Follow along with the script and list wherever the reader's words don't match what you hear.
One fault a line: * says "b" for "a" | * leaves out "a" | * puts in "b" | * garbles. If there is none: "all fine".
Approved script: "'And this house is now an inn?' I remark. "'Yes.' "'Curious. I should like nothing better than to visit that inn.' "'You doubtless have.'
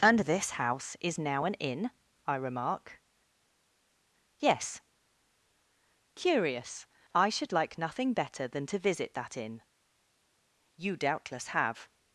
all fine